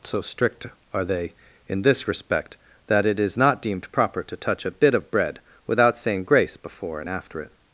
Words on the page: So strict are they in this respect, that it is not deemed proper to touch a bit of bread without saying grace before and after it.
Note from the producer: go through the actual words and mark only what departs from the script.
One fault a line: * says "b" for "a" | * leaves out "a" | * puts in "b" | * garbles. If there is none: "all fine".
all fine